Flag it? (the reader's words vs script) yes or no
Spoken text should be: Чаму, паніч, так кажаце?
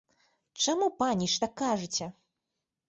no